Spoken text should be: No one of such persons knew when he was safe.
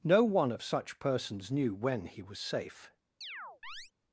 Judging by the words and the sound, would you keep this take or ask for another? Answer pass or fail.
fail